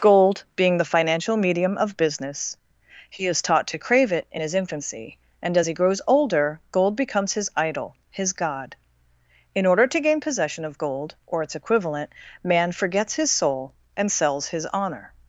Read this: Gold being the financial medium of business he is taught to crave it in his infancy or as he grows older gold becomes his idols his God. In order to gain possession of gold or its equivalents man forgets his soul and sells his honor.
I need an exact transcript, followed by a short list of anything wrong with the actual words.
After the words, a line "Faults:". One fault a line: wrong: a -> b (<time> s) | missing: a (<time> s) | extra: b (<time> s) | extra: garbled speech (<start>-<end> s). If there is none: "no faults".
Gold being the financial medium of business he is taught to crave it in his infancy and as he grows older gold becomes his idol his God. In order to gain possession of gold or its equivalent man forgets his soul and sells his honor.
Faults:
wrong: or -> and (5.4 s)
wrong: idols -> idol (7.6 s)
wrong: equivalents -> equivalent (11.5 s)